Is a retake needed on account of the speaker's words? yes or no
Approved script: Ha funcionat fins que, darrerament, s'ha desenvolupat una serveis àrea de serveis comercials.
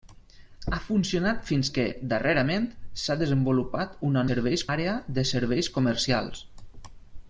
no